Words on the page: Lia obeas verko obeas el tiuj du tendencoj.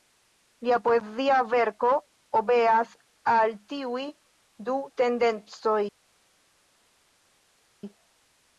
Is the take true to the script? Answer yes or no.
no